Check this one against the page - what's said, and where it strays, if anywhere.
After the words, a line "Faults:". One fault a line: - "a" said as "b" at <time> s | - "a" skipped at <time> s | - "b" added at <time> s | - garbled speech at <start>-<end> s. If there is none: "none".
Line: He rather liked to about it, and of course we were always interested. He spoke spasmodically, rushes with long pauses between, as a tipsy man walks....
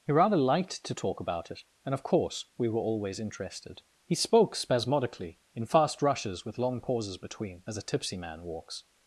He rather liked to talk about it, and of course we were always interested. He spoke spasmodically, in fast rushes with long pauses between, as a tipsy man walks....
Faults:
- "talk" added at 0.9 s
- "in fast" added at 5.5 s